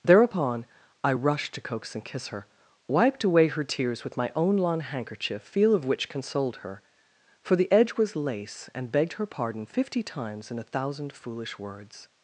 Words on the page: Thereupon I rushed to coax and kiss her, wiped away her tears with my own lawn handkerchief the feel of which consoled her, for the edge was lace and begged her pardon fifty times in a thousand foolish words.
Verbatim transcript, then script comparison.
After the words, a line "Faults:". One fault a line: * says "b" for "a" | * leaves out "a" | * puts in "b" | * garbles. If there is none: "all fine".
Thereupon I rushed to coax and kiss her, wiped away her tears with my own lawn handkerchief feel of which consoled her, for the edge was lace and begged her pardon fifty times in a thousand foolish words.
Faults:
* leaves out "the"